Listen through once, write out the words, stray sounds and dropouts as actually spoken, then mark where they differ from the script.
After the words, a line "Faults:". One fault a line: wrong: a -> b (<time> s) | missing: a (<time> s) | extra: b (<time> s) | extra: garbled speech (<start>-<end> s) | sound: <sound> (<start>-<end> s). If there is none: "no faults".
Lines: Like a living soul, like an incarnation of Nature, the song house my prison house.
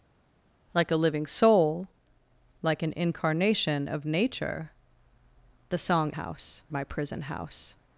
Like a living soul, like an incarnation of Nature, the song house my prison house.
Faults:
no faults